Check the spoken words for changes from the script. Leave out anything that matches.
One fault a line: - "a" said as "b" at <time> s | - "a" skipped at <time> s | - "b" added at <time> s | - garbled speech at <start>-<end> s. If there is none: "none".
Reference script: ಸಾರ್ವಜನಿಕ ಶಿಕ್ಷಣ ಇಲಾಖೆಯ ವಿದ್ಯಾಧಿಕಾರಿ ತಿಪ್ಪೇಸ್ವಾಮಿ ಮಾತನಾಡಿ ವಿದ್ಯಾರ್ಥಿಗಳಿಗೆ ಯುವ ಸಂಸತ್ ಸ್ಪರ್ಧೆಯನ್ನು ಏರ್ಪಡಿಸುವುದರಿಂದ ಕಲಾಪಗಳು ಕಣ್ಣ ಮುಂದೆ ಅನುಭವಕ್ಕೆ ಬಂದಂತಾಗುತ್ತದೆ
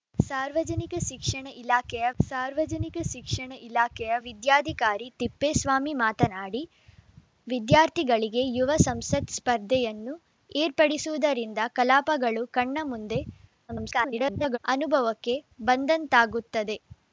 - "ಸಾರ್ವಜನಿಕ ಶಿಕ್ಷಣ ಇಲಾಖೆಯ" added at 2.2 s
- garbled speech at 13.7-14.6 s